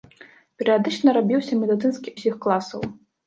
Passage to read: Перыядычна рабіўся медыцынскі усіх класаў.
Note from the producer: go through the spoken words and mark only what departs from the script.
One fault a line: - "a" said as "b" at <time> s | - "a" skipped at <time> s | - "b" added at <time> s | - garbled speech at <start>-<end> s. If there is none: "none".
none